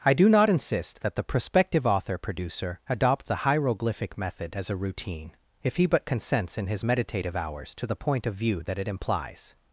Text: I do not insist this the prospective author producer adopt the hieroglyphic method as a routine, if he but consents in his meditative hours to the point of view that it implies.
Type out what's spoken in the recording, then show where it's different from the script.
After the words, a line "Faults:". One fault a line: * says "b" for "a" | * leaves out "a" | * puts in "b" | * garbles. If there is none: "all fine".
I do not insist that the prospective author producer adopt the hieroglyphic method as a routine, if he but consents in his meditative hours to the point of view that it implies.
Faults:
* says "that" for "this"